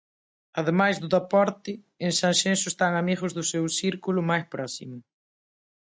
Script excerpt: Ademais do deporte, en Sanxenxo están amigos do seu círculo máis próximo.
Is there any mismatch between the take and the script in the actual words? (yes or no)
no